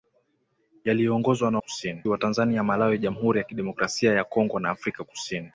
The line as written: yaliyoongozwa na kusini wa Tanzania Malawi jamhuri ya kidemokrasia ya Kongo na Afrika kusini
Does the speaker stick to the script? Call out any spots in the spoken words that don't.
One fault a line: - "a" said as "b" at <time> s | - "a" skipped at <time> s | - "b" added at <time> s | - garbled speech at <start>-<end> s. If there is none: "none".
none